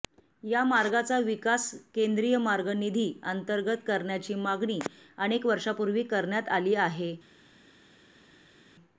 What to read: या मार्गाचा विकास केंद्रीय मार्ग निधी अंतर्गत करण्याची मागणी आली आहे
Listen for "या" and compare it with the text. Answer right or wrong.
right